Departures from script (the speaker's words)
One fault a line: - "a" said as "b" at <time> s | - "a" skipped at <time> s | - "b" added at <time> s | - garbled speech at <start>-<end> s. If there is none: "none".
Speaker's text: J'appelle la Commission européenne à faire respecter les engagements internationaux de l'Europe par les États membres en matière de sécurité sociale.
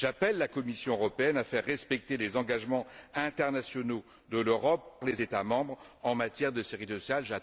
- "par" skipped at 5.0 s